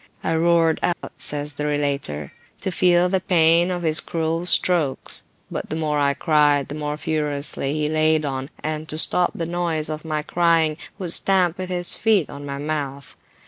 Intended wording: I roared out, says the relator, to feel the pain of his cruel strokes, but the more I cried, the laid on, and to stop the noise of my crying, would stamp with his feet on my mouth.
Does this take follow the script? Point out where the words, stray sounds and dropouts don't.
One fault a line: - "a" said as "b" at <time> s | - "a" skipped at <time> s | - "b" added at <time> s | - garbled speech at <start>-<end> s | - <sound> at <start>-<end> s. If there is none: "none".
- dropout at 0.9-1.0 s
- "more furiously he" added at 6.7 s